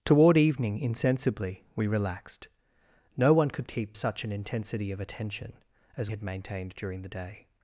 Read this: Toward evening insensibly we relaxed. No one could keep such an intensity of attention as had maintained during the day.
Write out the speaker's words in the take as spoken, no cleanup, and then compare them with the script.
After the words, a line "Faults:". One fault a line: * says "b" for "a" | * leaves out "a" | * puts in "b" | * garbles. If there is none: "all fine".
Toward evening insensibly we relaxed. No one could keep such an intensity of attention as had maintained during the day.
Faults:
all fine